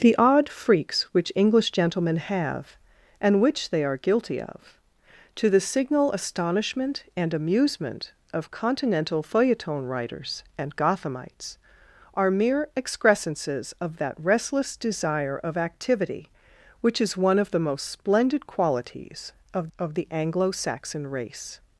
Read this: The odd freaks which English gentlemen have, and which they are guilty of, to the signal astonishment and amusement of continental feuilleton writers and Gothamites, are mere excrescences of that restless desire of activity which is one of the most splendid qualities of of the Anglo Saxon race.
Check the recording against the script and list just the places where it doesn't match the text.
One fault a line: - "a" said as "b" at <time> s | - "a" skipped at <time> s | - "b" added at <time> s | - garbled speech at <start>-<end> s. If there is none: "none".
none